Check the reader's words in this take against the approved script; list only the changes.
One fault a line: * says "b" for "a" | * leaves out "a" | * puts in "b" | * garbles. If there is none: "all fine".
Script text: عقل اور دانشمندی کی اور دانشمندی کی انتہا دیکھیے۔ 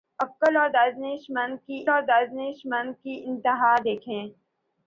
all fine